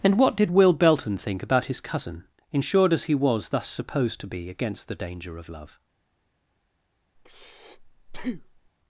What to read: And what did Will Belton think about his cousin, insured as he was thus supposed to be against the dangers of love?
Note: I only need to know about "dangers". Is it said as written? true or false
false